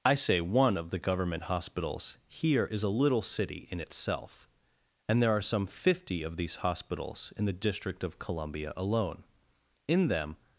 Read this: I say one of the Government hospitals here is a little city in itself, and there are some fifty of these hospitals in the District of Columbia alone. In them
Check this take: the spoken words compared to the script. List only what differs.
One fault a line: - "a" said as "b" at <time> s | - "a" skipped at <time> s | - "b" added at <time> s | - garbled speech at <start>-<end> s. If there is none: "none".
none